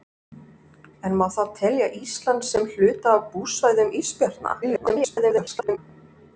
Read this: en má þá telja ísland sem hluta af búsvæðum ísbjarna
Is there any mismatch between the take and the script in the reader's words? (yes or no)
yes